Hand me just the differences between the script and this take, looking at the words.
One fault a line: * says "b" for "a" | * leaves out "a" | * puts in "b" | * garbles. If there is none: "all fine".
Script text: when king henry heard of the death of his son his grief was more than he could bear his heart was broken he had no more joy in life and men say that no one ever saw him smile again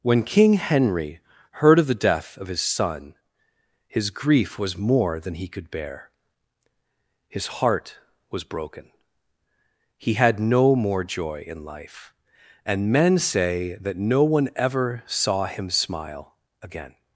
all fine